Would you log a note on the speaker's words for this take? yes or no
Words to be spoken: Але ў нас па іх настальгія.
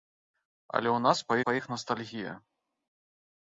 yes